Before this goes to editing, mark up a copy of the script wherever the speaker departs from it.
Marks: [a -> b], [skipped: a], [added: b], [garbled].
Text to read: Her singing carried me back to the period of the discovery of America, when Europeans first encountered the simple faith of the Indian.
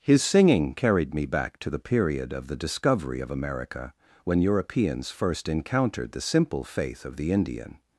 [Her -> His] singing carried me back to the period of the discovery of America, when Europeans first encountered the simple faith of the Indian.